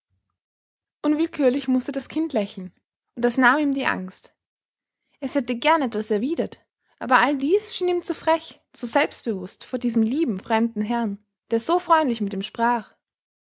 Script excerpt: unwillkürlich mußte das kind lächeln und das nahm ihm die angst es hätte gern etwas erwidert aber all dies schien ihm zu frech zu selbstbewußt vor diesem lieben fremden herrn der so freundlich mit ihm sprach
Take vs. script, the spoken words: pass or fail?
pass